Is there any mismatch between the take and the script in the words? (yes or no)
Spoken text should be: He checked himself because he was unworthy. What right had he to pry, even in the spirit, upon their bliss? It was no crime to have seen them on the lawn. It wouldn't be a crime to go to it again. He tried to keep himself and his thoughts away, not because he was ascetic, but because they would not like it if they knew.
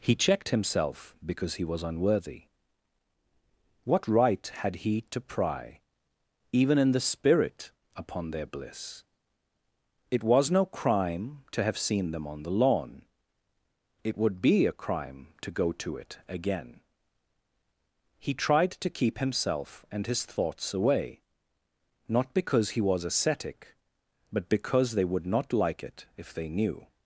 yes